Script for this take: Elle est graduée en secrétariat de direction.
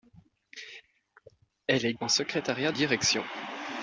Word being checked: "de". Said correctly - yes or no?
no